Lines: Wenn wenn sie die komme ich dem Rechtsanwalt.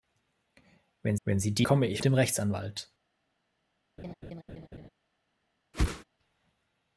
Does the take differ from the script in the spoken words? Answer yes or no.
no